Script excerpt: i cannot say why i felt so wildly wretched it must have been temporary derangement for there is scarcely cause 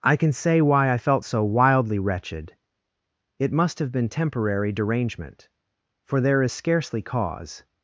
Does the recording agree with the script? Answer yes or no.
no